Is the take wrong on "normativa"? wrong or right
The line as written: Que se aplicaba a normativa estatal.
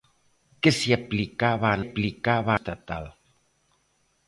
wrong